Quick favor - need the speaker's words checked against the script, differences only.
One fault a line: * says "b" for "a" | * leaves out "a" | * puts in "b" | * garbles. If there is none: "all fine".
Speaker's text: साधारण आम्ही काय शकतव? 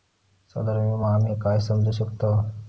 * puts in "विमो"
* puts in "समजू"